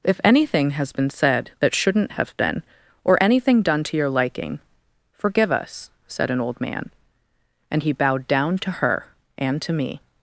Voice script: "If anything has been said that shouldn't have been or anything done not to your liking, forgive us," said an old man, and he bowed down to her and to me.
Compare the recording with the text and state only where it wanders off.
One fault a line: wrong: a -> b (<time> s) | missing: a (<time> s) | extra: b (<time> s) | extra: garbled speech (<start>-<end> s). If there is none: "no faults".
missing: not (3.8 s)